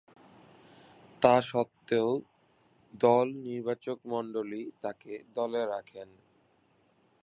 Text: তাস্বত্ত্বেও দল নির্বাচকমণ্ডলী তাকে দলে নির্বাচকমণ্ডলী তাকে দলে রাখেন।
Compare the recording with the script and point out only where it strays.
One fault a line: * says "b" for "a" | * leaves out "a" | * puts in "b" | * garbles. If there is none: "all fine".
* leaves out "নির্বাচকমণ্ডলী তাকে দলে"